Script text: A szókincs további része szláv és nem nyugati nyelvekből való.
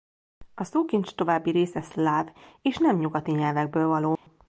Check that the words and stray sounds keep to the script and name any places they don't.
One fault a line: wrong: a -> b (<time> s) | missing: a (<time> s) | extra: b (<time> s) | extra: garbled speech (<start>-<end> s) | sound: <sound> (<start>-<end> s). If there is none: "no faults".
sound: dropout (4.2-4.3 s)